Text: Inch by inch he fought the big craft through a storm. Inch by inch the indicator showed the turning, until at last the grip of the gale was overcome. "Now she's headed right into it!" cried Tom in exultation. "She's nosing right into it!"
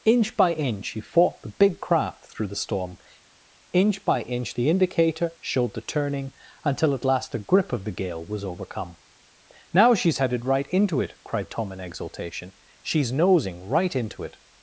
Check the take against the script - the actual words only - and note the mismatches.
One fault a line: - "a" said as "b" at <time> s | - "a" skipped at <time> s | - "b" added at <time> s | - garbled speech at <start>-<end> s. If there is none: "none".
- "a" said as "the" at 2.5 s